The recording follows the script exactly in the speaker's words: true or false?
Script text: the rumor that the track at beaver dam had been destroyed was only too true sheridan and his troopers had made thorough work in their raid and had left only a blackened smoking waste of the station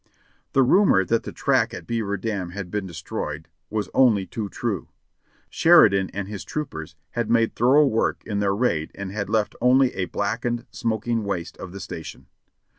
true